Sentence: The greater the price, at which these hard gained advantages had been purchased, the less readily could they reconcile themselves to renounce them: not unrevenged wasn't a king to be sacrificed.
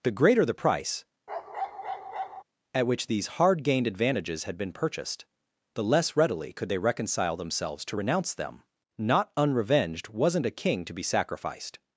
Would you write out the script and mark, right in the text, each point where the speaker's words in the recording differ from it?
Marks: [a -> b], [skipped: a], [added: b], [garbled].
The greater the price, at which these hard gained advantages had been purchased, the less readily could they reconcile themselves to renounce them: not unrevenged wasn't a king to be sacrificed.